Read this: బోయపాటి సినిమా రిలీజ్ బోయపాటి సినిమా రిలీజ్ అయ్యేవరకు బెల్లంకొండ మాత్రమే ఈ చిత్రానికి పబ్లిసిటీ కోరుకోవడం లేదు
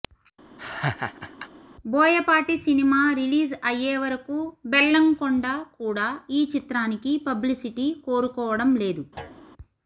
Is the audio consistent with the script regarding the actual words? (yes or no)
no